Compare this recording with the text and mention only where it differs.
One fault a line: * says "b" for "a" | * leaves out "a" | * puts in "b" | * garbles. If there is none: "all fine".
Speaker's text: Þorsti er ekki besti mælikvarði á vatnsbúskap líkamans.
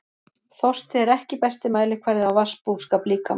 all fine